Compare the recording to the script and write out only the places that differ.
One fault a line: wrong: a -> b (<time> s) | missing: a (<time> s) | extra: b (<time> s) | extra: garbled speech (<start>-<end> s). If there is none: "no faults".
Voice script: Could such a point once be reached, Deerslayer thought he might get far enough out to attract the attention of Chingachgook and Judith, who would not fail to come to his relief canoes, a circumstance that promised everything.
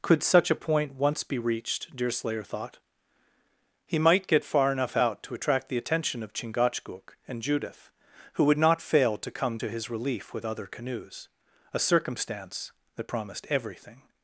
extra: with other (10.3 s)